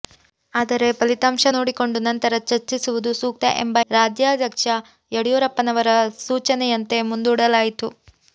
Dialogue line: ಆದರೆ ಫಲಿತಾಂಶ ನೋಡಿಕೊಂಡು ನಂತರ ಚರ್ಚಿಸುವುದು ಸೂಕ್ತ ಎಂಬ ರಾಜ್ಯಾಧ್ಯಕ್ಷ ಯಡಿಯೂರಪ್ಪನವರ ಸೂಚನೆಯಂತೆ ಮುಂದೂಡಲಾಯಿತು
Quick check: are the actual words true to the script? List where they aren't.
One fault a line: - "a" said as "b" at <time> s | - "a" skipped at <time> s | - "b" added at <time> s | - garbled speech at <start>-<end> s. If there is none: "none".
none